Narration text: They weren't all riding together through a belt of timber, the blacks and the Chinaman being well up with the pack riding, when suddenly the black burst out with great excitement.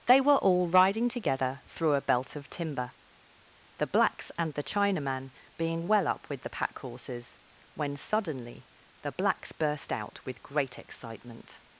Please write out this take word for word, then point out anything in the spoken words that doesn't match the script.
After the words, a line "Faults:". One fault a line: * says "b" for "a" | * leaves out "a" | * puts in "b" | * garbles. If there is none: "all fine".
They were all riding together through a belt of timber, the blacks and the Chinaman being well up with the pack horses, when suddenly the blacks burst out with great excitement.
Faults:
* says "were" for "weren't"
* says "horses" for "riding"
* says "blacks" for "black"